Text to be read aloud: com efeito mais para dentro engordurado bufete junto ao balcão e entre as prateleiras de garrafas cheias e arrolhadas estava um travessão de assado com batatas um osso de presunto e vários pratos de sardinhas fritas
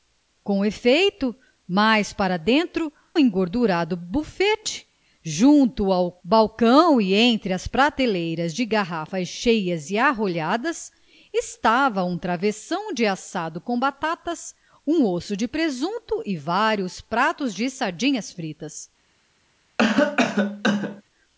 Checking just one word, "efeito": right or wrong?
right